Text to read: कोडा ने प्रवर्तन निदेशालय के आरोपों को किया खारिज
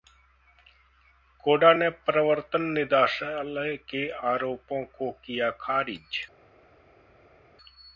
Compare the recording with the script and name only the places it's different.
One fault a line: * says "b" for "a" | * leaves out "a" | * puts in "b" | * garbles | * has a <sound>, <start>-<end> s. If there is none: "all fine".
all fine